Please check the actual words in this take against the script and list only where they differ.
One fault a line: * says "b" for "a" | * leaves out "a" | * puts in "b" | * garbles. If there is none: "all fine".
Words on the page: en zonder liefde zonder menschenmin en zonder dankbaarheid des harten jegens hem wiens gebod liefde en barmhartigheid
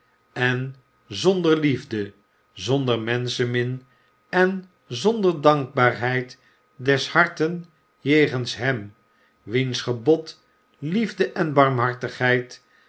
all fine